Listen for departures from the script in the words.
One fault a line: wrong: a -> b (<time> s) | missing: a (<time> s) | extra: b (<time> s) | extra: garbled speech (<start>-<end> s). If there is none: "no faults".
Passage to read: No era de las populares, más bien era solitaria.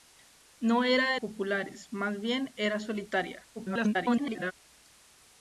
missing: las (1.2 s)
extra: garbled speech (3.5-4.5 s)